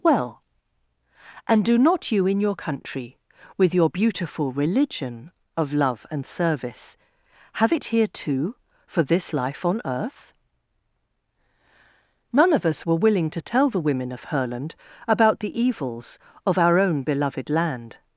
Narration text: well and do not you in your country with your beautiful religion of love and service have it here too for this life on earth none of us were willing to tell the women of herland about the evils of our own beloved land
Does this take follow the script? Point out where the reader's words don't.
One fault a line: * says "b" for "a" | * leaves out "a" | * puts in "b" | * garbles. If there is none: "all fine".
all fine